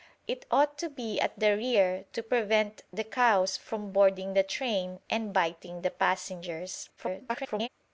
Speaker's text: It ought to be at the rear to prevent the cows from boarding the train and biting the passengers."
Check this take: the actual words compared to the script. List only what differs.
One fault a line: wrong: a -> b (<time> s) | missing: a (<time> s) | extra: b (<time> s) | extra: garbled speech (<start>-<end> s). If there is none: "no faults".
extra: garbled speech (7.0-7.7 s)